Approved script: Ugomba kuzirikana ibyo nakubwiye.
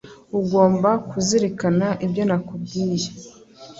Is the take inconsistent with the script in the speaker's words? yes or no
no